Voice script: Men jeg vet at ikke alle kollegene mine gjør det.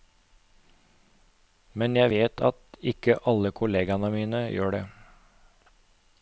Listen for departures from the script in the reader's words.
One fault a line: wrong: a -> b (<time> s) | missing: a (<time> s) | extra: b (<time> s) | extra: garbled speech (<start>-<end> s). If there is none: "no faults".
no faults